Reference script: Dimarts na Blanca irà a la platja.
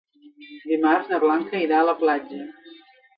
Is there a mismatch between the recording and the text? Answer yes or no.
no